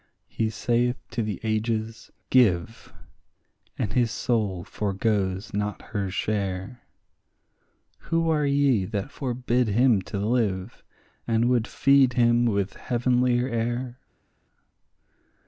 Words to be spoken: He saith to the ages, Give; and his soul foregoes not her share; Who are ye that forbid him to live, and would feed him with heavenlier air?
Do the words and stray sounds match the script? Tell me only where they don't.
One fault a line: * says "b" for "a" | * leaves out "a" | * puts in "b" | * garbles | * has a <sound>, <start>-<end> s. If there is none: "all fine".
all fine